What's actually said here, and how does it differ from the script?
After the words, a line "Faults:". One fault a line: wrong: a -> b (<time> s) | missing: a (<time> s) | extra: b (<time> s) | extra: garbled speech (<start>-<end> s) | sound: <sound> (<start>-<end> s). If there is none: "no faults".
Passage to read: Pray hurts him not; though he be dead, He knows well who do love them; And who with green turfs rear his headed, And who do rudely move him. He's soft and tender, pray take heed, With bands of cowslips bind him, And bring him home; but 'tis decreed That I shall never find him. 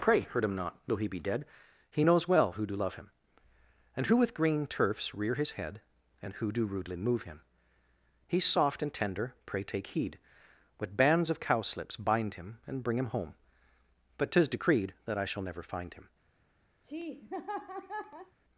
Pray hurt him not; though he be dead, He knows well who do love him; And who with green turfs rear his head, And who do rudely move him. He's soft and tender, pray take heed, With bands of cowslips bind him, And bring him home; but 'tis decreed That I shall never find him.
Faults:
wrong: hurts -> hurt (0.2 s)
wrong: them -> him (3.0 s)
wrong: headed -> head (5.5 s)
sound: laugh (16.8-18.4 s)